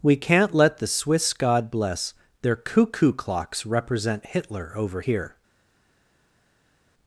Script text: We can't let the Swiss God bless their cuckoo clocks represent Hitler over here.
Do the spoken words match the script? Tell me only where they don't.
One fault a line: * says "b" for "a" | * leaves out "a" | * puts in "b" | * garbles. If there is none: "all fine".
all fine